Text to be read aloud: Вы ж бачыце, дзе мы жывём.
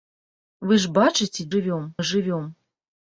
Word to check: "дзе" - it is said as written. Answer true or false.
false